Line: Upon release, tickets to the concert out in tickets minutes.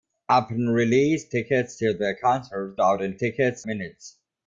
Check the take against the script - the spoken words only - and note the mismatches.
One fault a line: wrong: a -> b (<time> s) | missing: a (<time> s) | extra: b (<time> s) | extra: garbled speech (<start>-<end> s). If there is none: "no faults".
no faults